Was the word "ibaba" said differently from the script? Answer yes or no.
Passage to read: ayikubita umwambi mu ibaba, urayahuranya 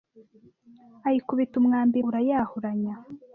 yes